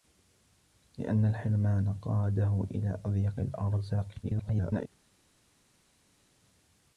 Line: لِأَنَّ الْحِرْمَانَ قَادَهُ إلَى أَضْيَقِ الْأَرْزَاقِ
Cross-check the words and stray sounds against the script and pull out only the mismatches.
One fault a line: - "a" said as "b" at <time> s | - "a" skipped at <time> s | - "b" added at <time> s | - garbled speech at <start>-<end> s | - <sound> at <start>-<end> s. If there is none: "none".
- garbled speech at 4.2-4.9 s